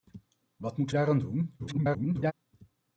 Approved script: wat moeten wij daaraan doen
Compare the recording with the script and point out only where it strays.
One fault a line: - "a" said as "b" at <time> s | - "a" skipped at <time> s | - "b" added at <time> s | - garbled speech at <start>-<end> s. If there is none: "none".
- "wij" skipped at 0.9 s
- garbled speech at 1.6-2.3 s